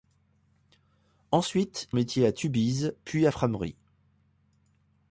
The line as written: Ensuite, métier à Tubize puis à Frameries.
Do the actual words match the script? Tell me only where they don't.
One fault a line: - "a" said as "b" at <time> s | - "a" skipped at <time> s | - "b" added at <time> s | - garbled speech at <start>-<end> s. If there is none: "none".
none